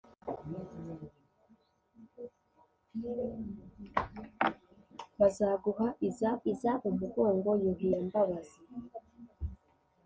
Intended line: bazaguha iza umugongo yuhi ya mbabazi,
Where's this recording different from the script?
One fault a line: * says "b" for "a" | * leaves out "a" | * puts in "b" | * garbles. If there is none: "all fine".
* puts in "iza"